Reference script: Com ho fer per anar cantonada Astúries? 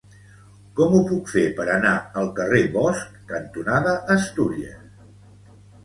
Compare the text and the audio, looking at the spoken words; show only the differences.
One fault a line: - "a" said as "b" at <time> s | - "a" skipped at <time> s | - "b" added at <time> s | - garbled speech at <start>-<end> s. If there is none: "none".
- "puc" added at 1.1 s
- "al carrer Bosch" added at 2.2 s